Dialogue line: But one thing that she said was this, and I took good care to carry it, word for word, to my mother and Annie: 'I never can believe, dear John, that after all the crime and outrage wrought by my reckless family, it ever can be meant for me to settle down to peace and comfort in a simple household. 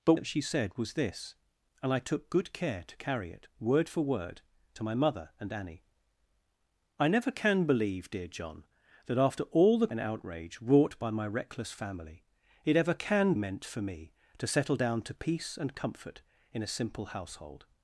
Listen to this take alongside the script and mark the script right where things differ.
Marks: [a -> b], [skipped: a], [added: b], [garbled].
But [skipped: one thing] that she said was this, and I took good care to carry it, word for word, to my mother and Annie: 'I never can believe, dear John, that after all the [skipped: crime] and outrage wrought by my reckless family, it ever can [skipped: be] meant for me to settle down to peace and comfort in a simple household.